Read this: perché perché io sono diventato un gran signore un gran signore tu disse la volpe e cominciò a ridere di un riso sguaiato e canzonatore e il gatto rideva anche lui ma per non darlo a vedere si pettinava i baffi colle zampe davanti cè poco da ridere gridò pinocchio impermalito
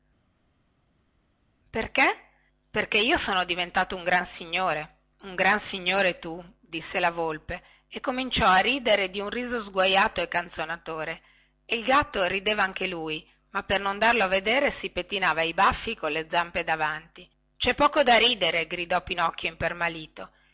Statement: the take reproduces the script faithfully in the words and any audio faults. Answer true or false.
true